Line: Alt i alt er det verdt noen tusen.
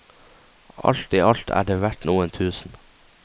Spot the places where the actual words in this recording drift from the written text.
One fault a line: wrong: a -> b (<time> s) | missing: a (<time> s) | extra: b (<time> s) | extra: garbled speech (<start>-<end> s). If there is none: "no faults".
no faults